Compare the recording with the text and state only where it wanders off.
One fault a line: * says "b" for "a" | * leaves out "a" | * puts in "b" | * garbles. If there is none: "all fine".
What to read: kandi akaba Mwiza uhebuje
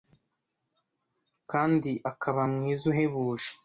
all fine